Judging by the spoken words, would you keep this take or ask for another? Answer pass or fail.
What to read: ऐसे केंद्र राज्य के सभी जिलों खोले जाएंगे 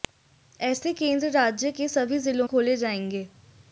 pass